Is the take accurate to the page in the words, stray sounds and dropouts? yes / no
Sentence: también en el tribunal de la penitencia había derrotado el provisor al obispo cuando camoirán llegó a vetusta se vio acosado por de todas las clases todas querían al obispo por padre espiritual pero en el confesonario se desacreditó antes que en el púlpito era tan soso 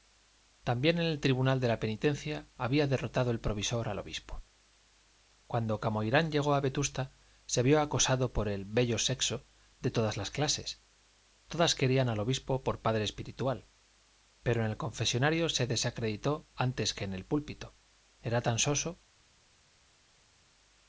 no